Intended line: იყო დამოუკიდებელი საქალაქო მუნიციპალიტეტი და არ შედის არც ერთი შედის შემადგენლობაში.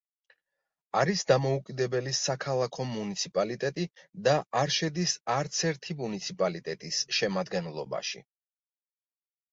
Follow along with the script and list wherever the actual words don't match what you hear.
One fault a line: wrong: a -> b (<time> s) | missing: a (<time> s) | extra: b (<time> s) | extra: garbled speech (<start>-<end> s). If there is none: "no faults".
wrong: იყო -> არის (1.0 s)
wrong: შედის -> მუნიციპალიტეტის (6.0 s)